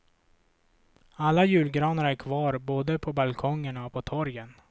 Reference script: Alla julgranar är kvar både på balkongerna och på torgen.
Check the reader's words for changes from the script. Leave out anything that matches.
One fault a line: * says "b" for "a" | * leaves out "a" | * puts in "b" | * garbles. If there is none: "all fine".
all fine